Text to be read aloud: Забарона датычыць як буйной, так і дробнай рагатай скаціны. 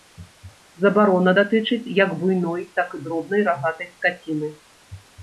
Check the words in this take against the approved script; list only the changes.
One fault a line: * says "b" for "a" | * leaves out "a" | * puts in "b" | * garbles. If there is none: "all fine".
all fine